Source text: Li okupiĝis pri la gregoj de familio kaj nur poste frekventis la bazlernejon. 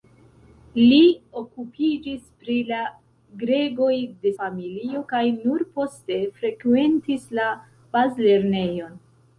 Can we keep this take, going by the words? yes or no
yes